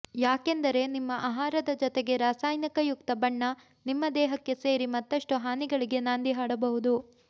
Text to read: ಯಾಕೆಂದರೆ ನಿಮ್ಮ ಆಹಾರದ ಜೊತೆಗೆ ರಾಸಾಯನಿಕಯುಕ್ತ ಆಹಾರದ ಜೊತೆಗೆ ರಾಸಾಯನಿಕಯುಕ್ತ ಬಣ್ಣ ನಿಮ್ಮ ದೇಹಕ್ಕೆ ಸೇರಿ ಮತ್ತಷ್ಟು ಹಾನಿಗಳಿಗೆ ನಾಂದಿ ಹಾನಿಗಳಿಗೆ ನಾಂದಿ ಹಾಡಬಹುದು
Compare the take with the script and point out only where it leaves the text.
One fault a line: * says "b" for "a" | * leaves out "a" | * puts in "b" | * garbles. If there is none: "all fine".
* leaves out "ಆಹಾರದ ಜೊತೆಗೆ ರಾಸಾಯನಿಕಯುಕ್ತ"
* leaves out "ಹಾನಿಗಳಿಗೆ ನಾಂದಿ"